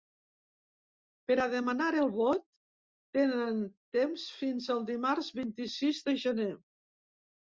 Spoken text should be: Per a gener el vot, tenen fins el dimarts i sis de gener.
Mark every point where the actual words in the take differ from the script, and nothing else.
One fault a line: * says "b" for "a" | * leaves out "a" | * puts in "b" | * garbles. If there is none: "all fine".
* says "demanar" for "gener"
* puts in "temps"
* puts in "vint"